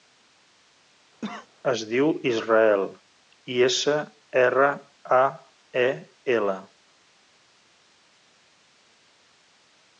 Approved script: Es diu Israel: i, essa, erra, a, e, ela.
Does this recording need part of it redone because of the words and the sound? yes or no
yes